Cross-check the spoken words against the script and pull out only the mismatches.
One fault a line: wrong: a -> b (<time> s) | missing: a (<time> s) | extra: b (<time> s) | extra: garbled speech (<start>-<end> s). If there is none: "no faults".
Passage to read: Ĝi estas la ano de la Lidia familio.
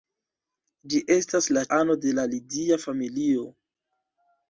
no faults